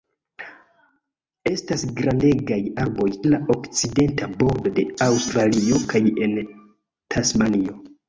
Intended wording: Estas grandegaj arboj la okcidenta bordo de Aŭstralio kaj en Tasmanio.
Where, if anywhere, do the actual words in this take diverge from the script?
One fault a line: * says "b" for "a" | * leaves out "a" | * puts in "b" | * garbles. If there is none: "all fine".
all fine